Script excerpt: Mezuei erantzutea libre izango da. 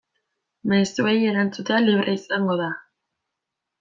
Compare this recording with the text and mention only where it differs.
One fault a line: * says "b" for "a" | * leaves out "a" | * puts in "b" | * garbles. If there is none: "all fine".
all fine